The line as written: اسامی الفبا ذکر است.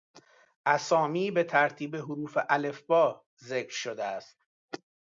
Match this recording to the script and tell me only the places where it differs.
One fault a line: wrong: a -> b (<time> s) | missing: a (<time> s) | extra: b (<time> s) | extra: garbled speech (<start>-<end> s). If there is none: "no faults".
extra: به ترتیب حروف (1.3 s)
extra: شده (3.7 s)